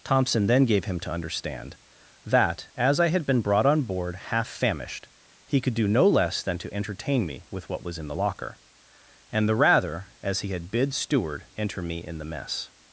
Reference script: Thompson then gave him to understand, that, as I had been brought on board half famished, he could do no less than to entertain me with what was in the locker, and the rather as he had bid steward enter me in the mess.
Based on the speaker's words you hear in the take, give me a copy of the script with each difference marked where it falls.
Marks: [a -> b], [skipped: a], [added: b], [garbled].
Thompson then gave him to understand, that, as I had been brought on board half famished, he could do no less than to entertain me with what was in the locker, and the rather as he had bid steward enter me in the mess.